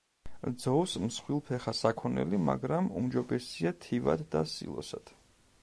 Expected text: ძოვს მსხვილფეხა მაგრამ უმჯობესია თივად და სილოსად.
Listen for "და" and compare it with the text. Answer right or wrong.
right